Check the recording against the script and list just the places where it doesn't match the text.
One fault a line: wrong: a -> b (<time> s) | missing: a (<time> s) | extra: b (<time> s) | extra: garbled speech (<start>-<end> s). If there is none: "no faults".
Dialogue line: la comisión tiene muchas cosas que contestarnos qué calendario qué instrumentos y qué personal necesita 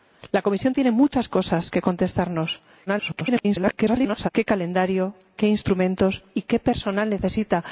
extra: garbled speech (2.9-4.3 s)